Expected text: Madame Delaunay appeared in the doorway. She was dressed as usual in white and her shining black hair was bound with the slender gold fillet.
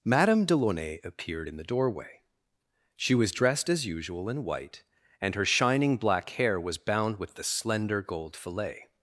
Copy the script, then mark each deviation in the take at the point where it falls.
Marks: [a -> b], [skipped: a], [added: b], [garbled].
Madame Delaunay appeared in the doorway. She was dressed as usual in white and her shining black hair was bound with the slender gold fillet.